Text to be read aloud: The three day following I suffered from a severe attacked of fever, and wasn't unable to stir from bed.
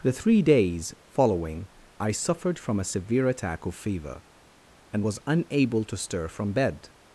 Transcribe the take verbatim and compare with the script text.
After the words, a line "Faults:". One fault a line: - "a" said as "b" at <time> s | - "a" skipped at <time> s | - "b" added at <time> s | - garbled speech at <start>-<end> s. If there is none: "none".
The three days following I suffered from a severe attack of fever, and was unable to stir from bed.
Faults:
- "day" said as "days" at 0.4 s
- "attacked" said as "attack" at 3.3 s
- "wasn't" said as "was" at 5.0 s